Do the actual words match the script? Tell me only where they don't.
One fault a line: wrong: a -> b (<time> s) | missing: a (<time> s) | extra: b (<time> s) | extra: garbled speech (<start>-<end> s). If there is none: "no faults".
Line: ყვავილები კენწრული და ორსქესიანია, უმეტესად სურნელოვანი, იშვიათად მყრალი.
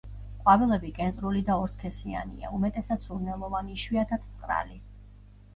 no faults